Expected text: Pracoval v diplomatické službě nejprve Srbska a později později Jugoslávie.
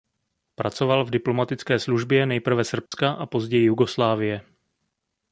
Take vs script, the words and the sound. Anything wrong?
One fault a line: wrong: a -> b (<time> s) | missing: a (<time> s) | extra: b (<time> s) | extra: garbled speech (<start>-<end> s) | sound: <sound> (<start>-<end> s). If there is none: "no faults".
sound: dropout (2.9-2.9 s)
missing: později (3.6 s)